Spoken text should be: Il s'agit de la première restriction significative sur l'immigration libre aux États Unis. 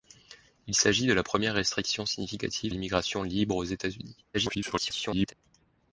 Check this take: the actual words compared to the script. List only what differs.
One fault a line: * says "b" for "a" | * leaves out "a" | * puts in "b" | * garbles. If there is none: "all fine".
* leaves out "sur"
* garbles